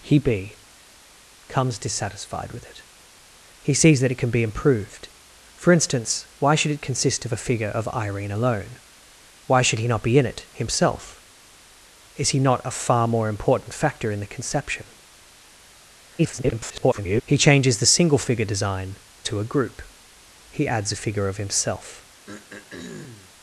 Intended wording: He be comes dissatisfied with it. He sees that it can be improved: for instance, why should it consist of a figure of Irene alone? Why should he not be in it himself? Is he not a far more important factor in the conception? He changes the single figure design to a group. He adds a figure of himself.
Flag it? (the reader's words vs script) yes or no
yes